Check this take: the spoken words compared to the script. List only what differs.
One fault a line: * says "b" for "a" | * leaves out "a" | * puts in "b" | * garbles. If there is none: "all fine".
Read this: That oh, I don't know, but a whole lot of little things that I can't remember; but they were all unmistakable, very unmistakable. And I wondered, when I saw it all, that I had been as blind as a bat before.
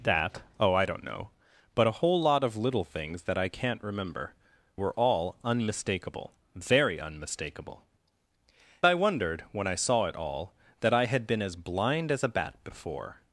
* leaves out "but they"
* leaves out "And"